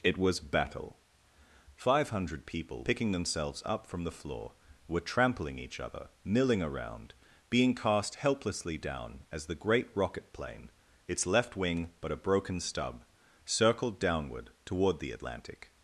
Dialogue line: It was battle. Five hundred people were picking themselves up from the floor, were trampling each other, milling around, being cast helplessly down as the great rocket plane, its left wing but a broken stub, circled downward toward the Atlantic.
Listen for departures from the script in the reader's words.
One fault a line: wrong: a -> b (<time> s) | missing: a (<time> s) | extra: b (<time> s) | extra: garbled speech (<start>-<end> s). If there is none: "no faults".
missing: were (2.9 s)